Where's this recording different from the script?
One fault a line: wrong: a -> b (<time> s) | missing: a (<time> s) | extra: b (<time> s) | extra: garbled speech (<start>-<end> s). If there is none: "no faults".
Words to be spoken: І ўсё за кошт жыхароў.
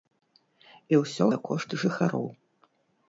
no faults